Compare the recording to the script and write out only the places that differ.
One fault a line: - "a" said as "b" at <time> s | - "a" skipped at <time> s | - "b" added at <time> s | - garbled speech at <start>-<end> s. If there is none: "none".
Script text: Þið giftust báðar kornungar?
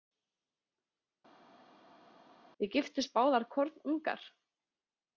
none